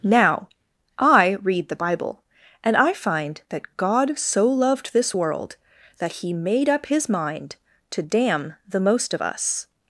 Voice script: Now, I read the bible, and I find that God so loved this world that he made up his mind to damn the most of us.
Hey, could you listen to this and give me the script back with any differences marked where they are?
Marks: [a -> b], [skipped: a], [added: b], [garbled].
Now, I read the bible, and I find that God so loved this world that he made up his mind to damn the most of us.